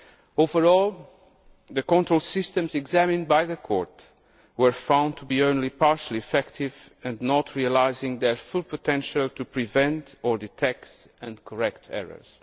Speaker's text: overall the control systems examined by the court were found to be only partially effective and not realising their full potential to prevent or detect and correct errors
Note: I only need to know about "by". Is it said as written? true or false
true